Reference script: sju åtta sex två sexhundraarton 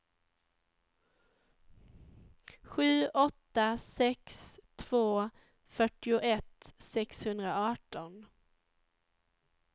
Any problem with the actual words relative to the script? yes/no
yes